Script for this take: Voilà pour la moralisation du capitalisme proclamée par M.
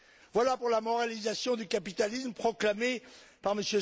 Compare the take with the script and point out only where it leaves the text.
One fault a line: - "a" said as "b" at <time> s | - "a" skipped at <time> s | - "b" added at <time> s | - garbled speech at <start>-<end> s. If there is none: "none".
none